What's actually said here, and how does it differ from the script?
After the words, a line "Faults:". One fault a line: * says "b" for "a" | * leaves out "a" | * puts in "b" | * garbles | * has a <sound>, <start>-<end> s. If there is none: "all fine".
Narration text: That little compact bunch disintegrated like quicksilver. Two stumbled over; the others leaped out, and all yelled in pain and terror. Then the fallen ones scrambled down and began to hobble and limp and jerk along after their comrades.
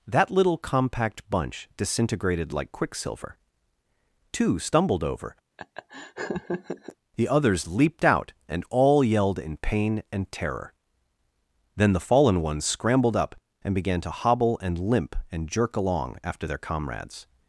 That little compact bunch disintegrated like quicksilver. Two stumbled over; the others leaped out, and all yelled in pain and terror. Then the fallen ones scrambled up and began to hobble and limp and jerk along after their comrades.
Faults:
* has a laugh, 5.6-7.0 s
* says "up" for "down"